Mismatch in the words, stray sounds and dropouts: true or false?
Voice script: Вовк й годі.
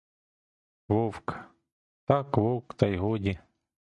true